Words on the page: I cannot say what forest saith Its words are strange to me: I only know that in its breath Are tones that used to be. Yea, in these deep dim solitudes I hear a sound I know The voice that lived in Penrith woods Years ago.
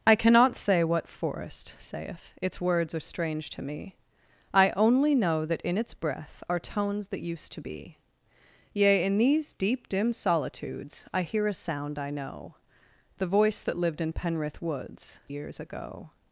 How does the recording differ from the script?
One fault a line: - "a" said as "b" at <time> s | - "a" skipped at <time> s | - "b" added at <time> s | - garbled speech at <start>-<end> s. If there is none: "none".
none